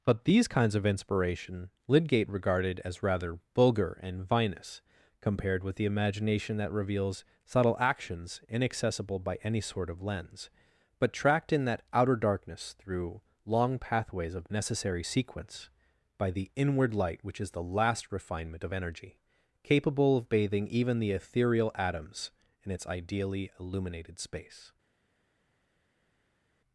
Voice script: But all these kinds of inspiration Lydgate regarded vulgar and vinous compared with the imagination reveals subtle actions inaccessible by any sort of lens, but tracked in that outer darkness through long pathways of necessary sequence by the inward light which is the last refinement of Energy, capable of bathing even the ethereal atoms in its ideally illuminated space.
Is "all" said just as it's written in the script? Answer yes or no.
no